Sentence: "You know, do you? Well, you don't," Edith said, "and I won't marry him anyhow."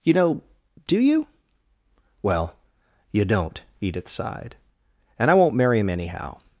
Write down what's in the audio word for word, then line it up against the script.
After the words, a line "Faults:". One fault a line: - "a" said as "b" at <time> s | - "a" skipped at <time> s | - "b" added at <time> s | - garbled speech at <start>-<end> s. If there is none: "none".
"You know, do you? Well, you don't," Edith sighed, "and I won't marry him anyhow."
Faults:
- "said" said as "sighed" at 4.1 s